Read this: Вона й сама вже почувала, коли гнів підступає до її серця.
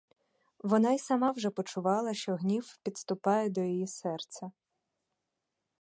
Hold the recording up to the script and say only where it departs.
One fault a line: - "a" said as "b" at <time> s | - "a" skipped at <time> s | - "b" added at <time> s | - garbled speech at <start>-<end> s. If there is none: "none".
- "коли" said as "що" at 2.1 s